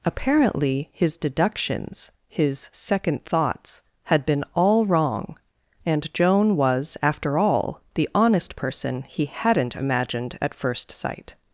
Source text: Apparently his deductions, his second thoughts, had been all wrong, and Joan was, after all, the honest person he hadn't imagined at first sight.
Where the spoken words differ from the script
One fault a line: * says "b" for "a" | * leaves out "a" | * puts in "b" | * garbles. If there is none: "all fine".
all fine